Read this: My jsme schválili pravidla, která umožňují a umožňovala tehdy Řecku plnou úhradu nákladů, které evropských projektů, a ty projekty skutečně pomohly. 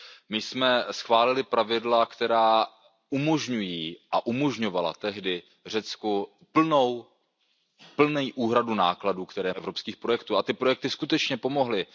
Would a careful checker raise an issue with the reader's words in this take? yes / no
no